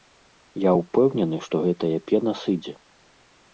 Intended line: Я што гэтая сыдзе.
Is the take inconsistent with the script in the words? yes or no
yes